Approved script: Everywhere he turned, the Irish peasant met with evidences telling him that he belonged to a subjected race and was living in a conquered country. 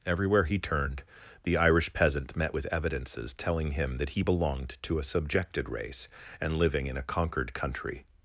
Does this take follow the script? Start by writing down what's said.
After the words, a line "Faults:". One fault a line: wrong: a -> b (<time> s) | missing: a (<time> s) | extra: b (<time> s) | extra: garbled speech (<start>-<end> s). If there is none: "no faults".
Everywhere he turned, the Irish peasant met with evidences telling him that he belonged to a subjected race and living in a conquered country.
Faults:
missing: was (6.6 s)